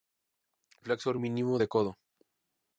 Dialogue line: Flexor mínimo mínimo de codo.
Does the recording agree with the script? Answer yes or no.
no